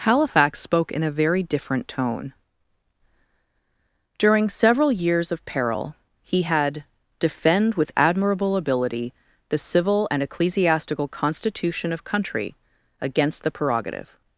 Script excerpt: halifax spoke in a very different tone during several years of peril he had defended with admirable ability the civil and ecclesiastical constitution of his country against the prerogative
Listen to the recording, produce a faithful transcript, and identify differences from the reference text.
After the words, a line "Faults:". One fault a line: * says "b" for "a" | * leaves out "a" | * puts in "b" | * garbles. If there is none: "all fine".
halifax spoke in a very different tone during several years of peril he had defend with admirable ability the civil and ecclesiastical constitution of country against the prerogative
Faults:
* says "defend" for "defended"
* leaves out "his"